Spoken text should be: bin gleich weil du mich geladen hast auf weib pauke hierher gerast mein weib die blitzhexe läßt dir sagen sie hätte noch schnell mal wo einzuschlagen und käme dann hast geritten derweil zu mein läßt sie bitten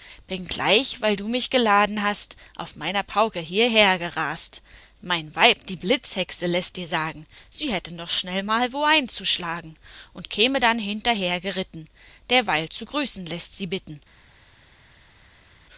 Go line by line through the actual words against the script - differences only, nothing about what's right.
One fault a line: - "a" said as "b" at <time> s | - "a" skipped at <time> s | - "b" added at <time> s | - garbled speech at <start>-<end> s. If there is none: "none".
- "weib" said as "meiner" at 2.8 s
- "hast" said as "hinterher" at 10.8 s
- "mein" said as "grüßen" at 12.9 s